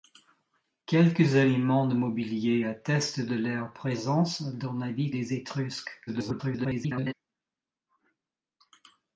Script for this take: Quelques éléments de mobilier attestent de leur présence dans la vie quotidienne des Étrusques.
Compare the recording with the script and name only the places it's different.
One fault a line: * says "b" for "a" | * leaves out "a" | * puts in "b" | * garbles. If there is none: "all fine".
* leaves out "quotidienne"
* garbles